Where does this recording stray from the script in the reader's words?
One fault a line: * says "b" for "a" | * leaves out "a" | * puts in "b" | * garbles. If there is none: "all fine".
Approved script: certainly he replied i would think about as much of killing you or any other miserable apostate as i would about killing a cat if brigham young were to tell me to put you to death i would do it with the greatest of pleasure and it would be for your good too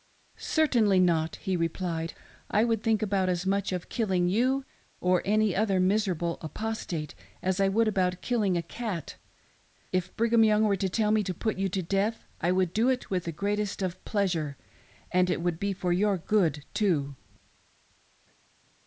* puts in "not"